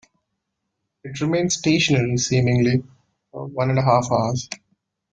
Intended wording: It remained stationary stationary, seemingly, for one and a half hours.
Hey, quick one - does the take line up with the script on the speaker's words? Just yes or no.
no